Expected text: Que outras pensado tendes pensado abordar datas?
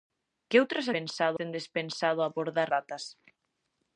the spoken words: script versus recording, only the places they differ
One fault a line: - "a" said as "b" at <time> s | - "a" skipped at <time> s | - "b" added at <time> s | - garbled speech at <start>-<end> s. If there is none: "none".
none